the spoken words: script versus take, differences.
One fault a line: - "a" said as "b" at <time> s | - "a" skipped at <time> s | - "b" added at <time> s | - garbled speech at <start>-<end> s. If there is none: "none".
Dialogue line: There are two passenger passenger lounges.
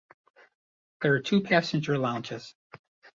- "passenger" skipped at 1.9 s